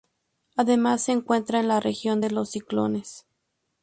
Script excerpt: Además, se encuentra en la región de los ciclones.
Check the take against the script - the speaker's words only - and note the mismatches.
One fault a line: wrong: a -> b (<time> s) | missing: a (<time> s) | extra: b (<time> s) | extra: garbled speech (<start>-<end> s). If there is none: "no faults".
no faults